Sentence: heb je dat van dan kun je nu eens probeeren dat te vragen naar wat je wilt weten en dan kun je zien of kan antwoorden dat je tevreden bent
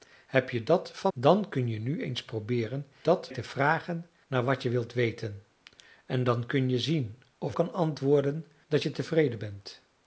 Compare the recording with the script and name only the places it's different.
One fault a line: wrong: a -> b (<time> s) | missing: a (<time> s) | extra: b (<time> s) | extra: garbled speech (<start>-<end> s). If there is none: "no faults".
no faults